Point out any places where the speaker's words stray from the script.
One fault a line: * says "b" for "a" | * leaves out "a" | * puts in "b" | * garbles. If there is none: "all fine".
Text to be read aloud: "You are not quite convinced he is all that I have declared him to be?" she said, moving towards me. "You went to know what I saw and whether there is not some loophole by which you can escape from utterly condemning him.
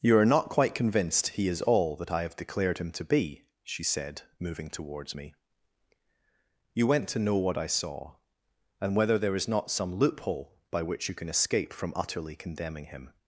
all fine